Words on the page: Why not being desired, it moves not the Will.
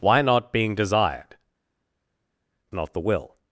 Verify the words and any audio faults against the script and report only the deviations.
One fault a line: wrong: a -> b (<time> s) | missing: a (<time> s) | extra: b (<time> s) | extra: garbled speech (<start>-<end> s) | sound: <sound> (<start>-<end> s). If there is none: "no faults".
missing: it moves (1.4 s)